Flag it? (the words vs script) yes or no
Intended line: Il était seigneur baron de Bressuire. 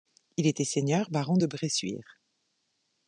no